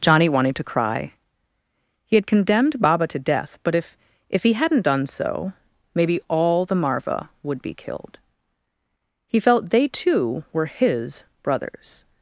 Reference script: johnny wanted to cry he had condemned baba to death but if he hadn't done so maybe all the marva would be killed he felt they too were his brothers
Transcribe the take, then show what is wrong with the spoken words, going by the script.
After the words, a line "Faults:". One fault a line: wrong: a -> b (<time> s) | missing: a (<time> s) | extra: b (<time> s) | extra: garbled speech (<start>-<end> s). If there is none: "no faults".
johnny wanted to cry he had condemned baba to death but if if he hadn't done so maybe all the marva would be killed he felt they too were his brothers
Faults:
extra: if (4.3 s)